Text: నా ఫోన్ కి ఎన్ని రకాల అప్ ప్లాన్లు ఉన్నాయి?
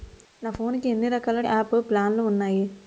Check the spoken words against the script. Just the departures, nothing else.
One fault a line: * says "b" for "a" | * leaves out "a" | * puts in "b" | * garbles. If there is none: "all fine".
all fine